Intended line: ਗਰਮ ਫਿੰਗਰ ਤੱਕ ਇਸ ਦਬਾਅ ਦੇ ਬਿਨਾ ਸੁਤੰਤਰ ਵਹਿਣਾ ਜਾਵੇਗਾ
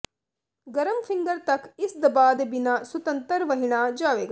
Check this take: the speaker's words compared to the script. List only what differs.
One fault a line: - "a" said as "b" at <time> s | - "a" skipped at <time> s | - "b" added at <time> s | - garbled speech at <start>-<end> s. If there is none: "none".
none